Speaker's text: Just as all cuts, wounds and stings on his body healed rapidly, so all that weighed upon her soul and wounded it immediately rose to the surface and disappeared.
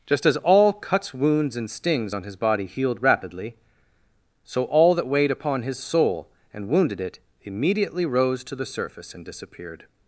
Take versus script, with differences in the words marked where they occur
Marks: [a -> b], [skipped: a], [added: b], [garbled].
Just as all cuts, wounds and stings on his body healed rapidly, so all that weighed upon [her -> his] soul and wounded it immediately rose to the surface and disappeared.